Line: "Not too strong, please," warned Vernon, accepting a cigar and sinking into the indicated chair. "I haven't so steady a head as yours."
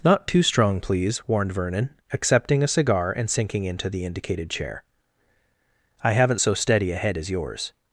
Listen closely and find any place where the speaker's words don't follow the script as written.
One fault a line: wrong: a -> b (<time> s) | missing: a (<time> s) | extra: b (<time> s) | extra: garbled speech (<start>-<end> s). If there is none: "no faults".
no faults